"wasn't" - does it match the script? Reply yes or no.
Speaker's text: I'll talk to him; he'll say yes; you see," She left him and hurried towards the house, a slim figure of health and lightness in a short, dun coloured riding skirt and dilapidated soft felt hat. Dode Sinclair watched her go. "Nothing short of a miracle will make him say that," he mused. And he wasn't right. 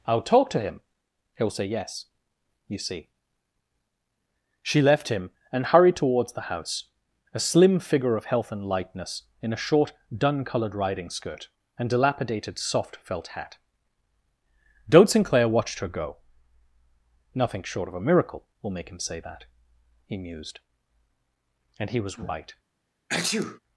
no